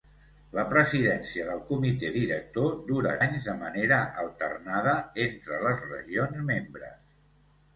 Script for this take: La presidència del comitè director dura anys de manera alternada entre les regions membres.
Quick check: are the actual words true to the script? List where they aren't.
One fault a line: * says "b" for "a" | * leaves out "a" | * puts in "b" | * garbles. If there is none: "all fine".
all fine